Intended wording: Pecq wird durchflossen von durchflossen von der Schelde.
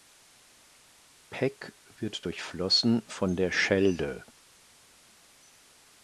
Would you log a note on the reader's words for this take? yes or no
yes